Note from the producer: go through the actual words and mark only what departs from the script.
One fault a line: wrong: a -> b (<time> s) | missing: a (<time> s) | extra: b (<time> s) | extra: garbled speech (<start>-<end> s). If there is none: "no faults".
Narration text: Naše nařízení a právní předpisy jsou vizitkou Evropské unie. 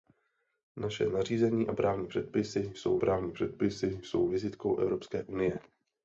extra: právní předpisy jsou (3.0 s)